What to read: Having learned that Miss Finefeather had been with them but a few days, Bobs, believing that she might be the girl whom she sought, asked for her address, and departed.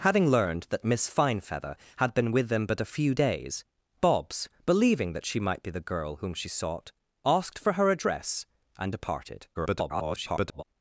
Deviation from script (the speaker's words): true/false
true